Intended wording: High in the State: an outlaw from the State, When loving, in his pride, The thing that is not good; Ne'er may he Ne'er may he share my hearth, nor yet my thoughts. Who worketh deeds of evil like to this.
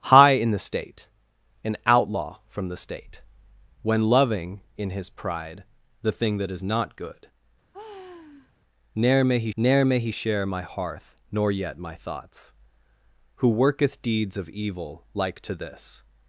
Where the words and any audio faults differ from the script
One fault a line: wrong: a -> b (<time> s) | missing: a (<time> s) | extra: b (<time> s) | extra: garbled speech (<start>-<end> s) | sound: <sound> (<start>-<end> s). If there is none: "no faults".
sound: sigh (7.7-8.5 s)